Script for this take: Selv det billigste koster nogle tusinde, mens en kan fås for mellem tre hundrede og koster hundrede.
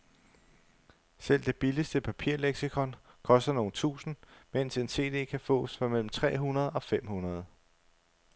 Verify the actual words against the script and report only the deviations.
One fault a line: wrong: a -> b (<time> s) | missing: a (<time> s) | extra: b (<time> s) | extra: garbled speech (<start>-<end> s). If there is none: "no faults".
extra: papirleksikon (2.0 s)
extra: cd (4.9 s)
wrong: koster -> fem (6.8 s)